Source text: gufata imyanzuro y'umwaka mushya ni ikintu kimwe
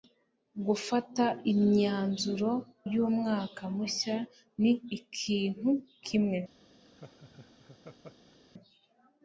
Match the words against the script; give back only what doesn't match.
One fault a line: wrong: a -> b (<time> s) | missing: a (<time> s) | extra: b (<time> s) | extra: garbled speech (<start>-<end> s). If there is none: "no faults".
no faults